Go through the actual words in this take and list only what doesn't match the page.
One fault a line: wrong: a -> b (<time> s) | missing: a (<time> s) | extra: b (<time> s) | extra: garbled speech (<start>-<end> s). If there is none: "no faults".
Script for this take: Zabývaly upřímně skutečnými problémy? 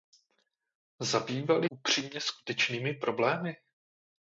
no faults